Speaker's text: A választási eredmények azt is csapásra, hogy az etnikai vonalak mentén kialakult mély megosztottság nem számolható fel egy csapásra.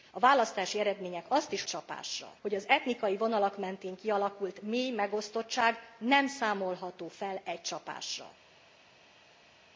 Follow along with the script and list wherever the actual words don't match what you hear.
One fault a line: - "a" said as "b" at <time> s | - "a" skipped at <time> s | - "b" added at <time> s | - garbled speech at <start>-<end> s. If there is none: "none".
none